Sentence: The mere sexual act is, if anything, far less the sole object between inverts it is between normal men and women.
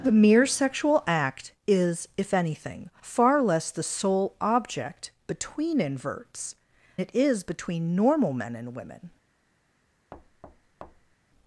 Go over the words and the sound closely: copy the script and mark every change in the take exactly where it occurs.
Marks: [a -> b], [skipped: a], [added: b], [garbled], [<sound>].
The mere sexual act is, if anything, far less the sole object between inverts it is between normal men and women. [thud]